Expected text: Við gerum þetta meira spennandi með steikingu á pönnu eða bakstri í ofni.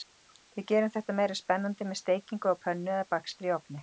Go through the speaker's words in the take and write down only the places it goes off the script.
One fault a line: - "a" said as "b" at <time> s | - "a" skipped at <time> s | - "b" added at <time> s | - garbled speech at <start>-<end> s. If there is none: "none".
none